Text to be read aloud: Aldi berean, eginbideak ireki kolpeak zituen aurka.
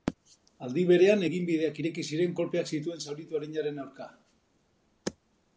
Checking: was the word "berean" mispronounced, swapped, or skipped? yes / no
no